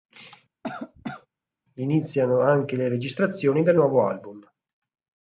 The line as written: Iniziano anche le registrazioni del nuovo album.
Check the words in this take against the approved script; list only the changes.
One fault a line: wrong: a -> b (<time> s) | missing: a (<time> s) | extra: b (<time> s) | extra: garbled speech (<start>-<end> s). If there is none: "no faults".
no faults